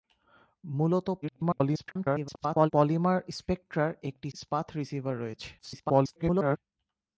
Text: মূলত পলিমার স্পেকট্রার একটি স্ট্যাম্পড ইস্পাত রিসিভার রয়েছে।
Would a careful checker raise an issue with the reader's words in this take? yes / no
yes